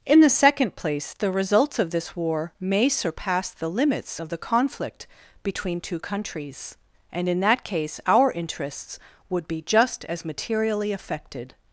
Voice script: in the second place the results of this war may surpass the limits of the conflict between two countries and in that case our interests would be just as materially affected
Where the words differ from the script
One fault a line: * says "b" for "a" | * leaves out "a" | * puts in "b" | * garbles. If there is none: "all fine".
all fine